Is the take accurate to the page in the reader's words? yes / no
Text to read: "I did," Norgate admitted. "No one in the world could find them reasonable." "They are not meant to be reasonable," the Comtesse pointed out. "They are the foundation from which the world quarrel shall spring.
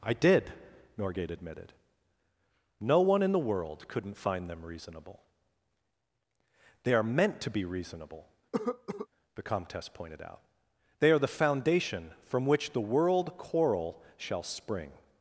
no